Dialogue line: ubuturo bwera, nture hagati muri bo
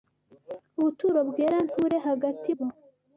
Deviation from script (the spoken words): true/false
true